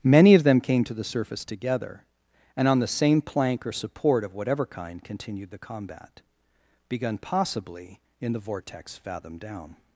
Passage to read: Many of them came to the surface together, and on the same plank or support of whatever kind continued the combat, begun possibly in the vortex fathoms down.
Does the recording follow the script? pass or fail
fail